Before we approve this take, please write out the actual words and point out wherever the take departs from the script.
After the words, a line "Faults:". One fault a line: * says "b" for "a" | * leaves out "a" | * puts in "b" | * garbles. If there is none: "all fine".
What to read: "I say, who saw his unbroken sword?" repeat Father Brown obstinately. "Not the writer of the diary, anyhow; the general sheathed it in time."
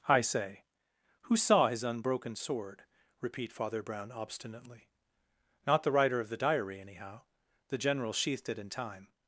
"I say, who saw his unbroken sword?" repeat Father Brown obstinately. "Not the writer of the diary, anyhow; the general sheathed it in time."
Faults:
all fine